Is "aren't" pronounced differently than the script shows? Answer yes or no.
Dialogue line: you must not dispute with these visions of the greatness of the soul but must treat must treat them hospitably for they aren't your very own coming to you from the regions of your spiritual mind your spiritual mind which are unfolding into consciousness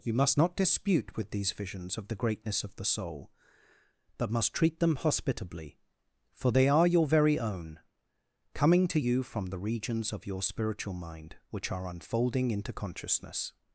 yes